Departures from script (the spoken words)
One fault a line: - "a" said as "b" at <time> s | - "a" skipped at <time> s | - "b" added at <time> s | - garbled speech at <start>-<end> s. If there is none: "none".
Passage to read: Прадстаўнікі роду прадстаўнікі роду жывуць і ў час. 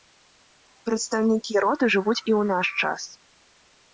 - "прадстаўнікі роду" skipped at 1.9 s
- "наш" added at 2.5 s